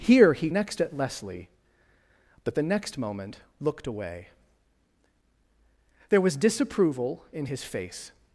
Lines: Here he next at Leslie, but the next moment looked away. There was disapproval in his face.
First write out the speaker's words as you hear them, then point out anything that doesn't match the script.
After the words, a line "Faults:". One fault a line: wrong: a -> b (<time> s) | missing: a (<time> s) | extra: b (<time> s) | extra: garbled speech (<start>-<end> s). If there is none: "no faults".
Here he next at Leslie, but the next moment looked away. There was disapproval in his face.
Faults:
no faults